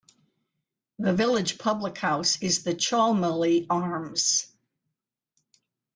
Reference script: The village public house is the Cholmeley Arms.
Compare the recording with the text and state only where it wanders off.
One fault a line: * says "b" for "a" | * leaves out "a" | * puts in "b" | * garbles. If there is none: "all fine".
all fine